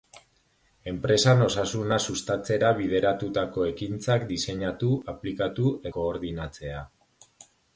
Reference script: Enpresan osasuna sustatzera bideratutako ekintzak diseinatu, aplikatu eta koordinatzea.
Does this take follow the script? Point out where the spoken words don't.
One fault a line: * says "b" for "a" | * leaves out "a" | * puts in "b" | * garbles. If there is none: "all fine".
* leaves out "eta"